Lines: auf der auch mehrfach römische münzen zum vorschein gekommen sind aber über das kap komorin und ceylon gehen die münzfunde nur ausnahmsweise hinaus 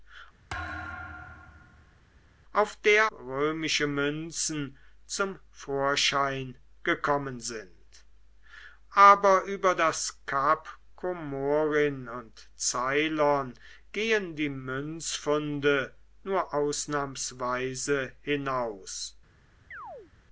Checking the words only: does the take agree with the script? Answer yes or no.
no